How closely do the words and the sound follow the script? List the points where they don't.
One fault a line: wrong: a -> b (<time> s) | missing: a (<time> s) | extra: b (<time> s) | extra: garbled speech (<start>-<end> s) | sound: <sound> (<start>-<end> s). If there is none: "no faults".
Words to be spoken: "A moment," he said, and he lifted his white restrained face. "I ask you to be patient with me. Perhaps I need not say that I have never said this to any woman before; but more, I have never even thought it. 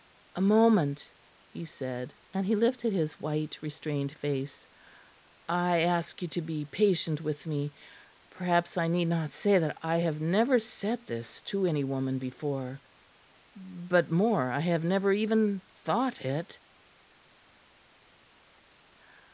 no faults